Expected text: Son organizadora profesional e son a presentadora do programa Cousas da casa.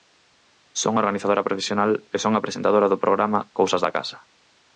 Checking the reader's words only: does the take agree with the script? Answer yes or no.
yes